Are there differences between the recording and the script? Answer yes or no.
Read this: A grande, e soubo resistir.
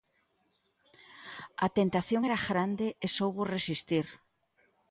yes